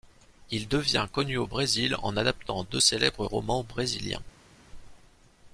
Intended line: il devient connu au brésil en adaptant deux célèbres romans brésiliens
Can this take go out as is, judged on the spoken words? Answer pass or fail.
pass